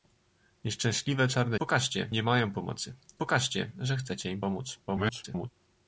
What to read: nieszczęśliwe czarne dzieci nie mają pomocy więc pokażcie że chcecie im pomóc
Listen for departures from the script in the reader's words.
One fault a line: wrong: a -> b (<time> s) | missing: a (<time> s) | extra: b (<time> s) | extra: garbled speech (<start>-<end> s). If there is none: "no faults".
wrong: dzieci -> pokażcie (1.5 s)
missing: więc (2.9 s)
extra: garbled speech (4.9-5.5 s)